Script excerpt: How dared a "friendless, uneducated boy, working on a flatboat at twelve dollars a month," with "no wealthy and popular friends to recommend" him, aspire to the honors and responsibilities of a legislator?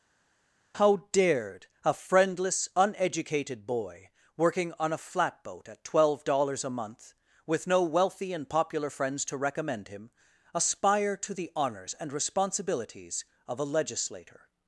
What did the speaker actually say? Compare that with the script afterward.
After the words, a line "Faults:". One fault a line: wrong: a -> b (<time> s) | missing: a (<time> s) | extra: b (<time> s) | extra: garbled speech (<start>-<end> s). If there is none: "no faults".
How dared a "friendless, uneducated boy, working on a flatboat at twelve dollars a month," with "no wealthy and popular friends to recommend" him, aspire to the honors and responsibilities of a legislator?
Faults:
no faults